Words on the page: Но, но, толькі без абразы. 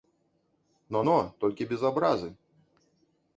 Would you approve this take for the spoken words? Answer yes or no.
yes